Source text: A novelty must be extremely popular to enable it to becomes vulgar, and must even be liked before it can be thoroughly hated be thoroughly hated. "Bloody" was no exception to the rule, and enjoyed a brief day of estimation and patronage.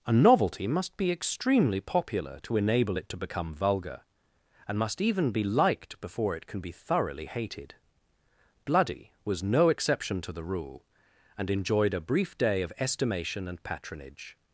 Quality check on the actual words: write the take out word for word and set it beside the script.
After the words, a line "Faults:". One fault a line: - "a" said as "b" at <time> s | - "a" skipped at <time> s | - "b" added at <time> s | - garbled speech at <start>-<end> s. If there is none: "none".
A novelty must be extremely popular to enable it to become vulgar, and must even be liked before it can be thoroughly hated. "Bloody" was no exception to the rule, and enjoyed a brief day of estimation and patronage.
Faults:
- "becomes" said as "become" at 3.2 s
- "be thoroughly hated" skipped at 7.8 s